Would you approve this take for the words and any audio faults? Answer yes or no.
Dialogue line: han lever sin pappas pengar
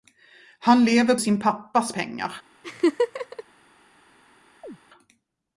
no